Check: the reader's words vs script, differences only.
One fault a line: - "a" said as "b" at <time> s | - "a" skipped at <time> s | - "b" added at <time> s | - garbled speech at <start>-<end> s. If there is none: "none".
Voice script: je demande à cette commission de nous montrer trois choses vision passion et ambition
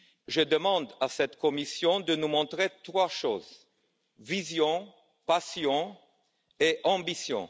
none